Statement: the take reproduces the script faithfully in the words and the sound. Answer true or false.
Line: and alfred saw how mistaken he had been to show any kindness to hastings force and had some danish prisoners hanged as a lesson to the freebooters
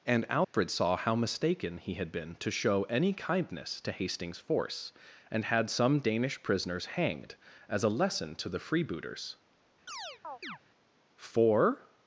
false